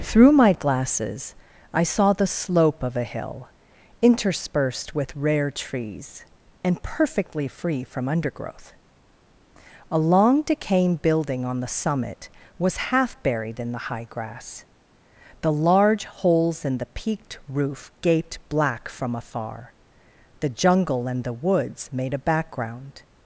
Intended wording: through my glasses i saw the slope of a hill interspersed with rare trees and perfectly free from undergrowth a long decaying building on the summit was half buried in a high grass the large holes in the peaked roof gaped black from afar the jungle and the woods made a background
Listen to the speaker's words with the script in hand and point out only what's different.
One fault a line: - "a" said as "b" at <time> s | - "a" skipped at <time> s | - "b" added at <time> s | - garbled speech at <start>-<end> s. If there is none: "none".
- "a" said as "the" at 13.7 s